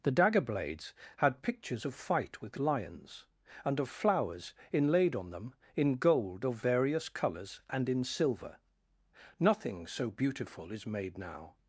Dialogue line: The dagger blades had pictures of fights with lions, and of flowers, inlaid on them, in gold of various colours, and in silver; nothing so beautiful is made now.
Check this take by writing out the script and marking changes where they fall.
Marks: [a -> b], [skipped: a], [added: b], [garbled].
The dagger blades had pictures of [fights -> fight] with lions, and of flowers, inlaid on them, in gold of various colours, and in silver; nothing so beautiful is made now.